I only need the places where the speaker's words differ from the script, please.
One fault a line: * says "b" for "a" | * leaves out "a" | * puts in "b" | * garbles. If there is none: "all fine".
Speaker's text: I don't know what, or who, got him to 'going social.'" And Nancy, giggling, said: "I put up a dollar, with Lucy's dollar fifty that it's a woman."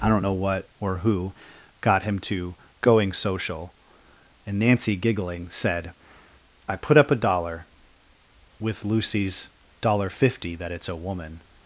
all fine